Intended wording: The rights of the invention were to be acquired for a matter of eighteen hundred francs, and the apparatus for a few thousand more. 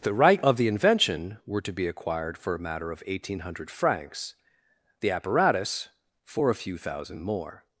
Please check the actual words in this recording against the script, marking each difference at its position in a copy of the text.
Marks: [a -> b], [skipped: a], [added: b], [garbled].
The [rights -> right] of the invention were to be acquired for a matter of eighteen hundred francs, [skipped: and] the apparatus for a few thousand more.